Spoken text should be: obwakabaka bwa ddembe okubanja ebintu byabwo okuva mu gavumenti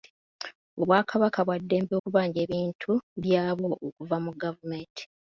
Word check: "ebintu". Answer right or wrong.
right